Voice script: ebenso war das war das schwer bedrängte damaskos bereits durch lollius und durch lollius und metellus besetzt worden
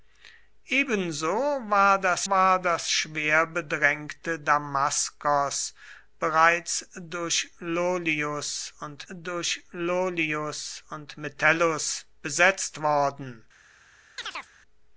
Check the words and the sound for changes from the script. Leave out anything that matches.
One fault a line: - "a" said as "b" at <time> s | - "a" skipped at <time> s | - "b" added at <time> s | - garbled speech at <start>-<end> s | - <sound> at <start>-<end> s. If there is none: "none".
- chirp at 14.2-14.5 s